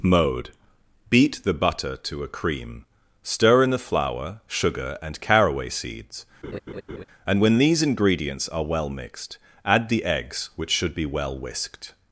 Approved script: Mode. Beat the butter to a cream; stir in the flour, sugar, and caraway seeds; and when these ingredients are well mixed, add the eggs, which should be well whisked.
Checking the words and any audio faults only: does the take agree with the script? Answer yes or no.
no